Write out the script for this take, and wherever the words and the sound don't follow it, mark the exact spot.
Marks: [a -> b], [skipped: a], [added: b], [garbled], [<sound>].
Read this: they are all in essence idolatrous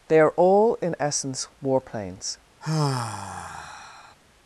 they are all in essence [idolatrous -> warplanes] [sigh]